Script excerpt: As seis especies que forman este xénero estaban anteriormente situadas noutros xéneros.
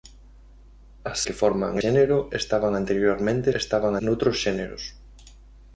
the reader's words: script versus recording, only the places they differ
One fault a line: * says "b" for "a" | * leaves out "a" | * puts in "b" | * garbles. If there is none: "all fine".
* leaves out "seis especies"
* leaves out "este"
* says "estaban" for "situadas"